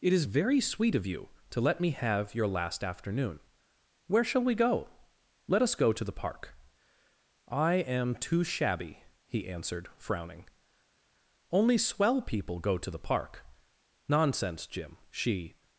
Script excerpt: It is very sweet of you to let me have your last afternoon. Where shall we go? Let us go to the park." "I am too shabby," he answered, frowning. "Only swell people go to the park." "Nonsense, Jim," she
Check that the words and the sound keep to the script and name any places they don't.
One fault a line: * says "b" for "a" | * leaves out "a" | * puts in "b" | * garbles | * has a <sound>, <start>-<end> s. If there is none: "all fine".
all fine